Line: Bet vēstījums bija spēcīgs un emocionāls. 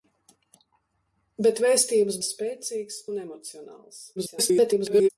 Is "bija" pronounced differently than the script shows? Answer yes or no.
yes